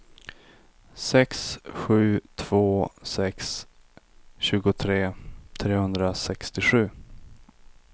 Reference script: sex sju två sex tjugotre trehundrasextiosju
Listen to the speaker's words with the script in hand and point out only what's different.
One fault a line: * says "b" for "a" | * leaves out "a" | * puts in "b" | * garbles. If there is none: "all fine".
all fine